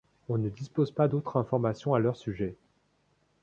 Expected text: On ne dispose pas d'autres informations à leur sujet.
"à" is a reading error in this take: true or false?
false